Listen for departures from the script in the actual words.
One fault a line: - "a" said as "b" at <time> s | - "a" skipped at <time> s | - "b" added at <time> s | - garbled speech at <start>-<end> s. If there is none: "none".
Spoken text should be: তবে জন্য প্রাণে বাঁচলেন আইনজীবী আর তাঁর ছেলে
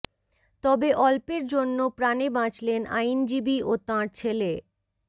- "অল্পের" added at 1.0 s
- "আর" said as "ও" at 3.6 s